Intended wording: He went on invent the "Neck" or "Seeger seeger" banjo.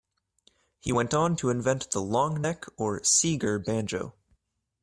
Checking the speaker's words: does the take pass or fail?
fail